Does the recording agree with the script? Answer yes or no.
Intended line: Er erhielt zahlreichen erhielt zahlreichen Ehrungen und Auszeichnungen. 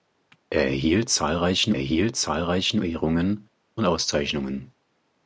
yes